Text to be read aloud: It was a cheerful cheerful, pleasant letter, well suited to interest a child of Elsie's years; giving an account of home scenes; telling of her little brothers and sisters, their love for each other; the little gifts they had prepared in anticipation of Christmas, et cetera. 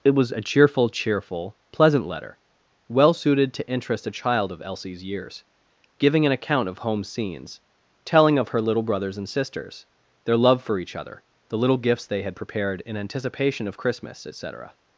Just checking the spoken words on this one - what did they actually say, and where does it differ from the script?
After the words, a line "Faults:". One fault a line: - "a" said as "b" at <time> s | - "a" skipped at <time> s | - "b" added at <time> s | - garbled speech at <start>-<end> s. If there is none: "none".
It was a cheerful cheerful, pleasant letter, well suited to interest a child of Elsie's years; giving an account of home scenes; telling of her little brothers and sisters, their love for each other; the little gifts they had prepared in anticipation of Christmas, et cetera.
Faults:
none